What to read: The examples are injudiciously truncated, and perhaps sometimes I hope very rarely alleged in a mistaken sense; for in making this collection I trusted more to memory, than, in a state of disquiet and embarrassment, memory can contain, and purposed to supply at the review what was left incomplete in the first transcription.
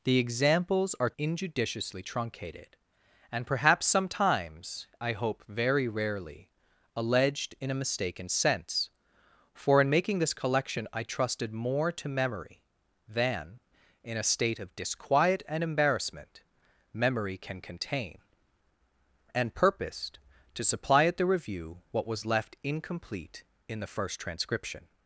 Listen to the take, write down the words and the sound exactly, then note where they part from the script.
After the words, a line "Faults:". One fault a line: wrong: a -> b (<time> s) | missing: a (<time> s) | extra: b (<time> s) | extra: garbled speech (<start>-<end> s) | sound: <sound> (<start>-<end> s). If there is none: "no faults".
The examples are injudiciously truncated, and perhaps sometimes I hope very rarely alleged in a mistaken sense; for in making this collection I trusted more to memory, than, in a state of disquiet and embarrassment, memory can contain, and purposed to supply at the review what was left incomplete in the first transcription.
Faults:
no faults